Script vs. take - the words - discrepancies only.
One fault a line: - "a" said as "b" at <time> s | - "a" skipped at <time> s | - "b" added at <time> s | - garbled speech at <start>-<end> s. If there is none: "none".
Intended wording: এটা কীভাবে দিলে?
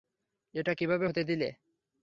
- "হতে" added at 1.0 s